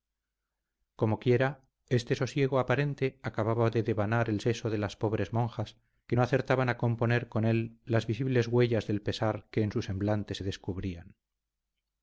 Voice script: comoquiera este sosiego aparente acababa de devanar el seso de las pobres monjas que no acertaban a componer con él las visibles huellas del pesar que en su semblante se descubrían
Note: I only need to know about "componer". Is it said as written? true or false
true